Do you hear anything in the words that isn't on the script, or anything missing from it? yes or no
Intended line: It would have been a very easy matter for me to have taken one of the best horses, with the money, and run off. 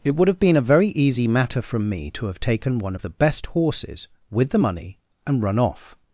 yes